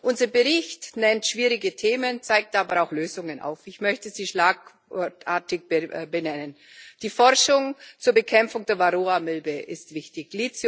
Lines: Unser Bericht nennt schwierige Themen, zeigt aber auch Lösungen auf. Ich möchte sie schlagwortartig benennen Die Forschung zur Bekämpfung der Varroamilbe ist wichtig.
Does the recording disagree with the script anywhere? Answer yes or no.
no